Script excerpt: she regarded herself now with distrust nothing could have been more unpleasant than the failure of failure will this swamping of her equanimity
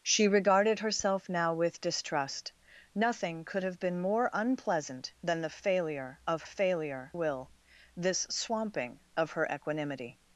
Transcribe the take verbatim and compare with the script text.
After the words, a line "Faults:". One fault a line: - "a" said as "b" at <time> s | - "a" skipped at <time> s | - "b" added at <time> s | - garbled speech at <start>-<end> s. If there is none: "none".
she regarded herself now with distrust nothing could have been more unpleasant than the failure of failure will this swamping of her equanimity
Faults:
none